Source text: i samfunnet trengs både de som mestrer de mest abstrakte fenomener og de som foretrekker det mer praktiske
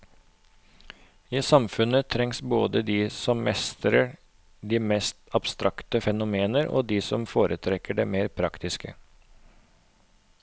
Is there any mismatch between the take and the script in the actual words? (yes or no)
no